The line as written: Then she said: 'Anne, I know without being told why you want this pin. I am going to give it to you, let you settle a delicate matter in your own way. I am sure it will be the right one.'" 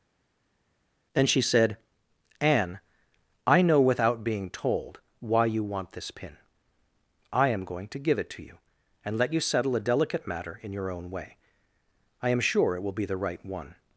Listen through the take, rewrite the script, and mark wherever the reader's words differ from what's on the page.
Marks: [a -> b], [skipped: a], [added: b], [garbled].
Then she said: 'Anne, I know without being told why you want this pin. I am going to give it to you, [added: and] let you settle a delicate matter in your own way. I am sure it will be the right one.'"